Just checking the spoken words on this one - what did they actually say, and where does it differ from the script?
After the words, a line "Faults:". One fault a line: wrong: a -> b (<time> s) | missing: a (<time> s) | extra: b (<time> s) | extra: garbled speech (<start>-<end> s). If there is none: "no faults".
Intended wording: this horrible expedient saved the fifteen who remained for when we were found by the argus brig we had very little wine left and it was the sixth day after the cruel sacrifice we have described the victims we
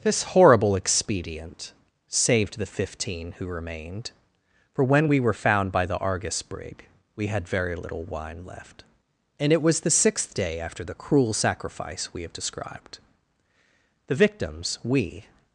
this horrible expedient saved the fifteen who remained for when we were found by the argus brig we had very little wine left and it was the sixth day after the cruel sacrifice we have described the victims we
Faults:
no faults